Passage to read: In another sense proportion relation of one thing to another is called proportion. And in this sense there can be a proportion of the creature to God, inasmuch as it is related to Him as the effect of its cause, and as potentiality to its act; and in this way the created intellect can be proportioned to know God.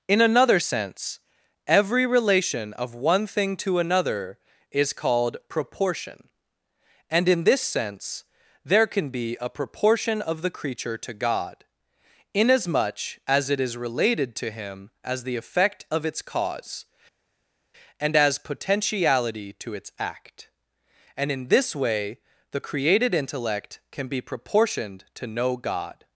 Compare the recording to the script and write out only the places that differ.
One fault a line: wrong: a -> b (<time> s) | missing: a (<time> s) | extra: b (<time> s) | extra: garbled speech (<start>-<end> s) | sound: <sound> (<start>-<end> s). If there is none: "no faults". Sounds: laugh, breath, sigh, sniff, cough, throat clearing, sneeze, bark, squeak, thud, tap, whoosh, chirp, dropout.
wrong: proportion -> every (1.7 s)